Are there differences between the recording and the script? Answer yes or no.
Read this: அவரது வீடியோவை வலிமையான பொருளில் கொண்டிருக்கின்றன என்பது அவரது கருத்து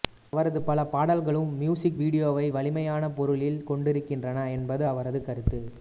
yes